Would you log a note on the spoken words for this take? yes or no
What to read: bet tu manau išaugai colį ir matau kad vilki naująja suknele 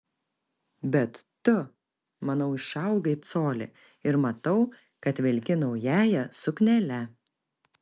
no